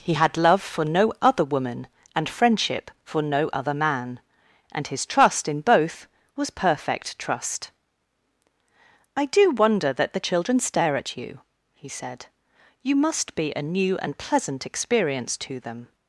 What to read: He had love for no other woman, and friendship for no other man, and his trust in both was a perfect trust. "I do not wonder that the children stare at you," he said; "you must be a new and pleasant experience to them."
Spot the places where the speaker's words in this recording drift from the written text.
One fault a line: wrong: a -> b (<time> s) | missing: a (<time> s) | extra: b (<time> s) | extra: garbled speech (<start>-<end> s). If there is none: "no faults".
missing: a (6.5 s)
missing: not (9.5 s)